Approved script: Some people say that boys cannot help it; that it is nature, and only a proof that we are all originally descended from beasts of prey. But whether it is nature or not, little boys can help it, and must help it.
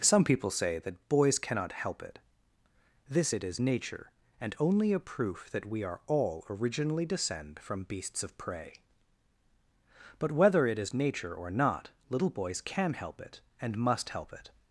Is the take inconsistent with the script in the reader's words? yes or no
yes